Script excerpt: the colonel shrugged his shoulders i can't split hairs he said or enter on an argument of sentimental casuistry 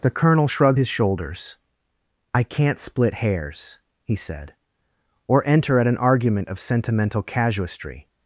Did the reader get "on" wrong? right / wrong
wrong